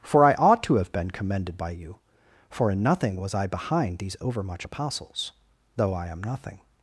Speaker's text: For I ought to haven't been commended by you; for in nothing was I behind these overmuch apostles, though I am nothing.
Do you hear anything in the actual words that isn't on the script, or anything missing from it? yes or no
yes